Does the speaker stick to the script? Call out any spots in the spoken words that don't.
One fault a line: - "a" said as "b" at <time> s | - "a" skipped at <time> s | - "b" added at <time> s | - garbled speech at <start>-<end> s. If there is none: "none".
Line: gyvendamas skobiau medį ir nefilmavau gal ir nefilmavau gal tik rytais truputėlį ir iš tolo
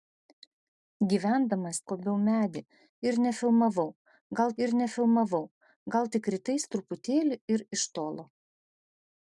none